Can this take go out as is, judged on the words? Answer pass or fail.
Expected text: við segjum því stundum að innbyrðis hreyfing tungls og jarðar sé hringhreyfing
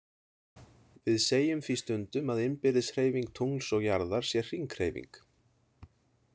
pass